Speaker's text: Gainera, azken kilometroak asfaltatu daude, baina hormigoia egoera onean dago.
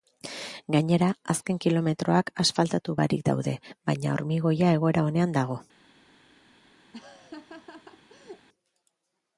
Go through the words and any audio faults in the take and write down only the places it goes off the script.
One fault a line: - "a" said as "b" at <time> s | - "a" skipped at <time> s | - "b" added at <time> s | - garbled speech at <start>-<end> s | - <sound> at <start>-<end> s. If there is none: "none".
- "barik" added at 3.0 s
- laugh at 6.9-8.5 s